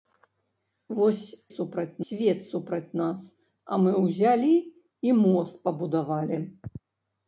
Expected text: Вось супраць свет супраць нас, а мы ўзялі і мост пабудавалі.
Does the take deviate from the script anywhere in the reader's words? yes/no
no